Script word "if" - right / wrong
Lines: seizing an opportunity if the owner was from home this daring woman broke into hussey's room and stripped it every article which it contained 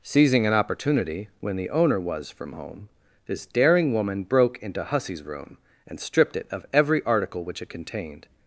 wrong